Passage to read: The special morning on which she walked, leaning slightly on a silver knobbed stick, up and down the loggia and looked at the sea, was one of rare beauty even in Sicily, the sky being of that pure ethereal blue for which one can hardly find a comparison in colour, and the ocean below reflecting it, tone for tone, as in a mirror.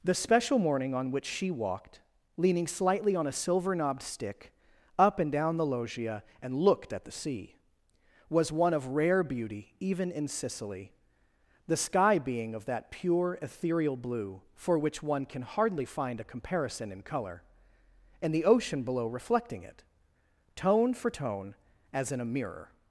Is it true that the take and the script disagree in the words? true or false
false